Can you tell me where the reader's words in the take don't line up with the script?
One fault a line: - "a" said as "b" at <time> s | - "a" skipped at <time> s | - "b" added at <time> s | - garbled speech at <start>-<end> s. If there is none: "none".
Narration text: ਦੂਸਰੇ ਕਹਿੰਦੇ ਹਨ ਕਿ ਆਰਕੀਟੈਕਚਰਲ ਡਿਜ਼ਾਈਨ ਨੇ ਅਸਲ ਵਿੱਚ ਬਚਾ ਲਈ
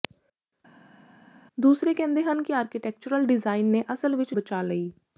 none